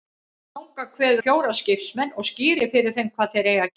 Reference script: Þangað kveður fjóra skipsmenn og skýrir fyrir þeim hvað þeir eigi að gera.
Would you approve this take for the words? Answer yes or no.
yes